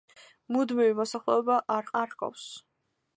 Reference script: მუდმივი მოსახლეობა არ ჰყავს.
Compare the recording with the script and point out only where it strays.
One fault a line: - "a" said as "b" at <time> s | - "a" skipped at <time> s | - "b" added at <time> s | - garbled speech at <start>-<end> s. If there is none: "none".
- "არ" added at 2.0 s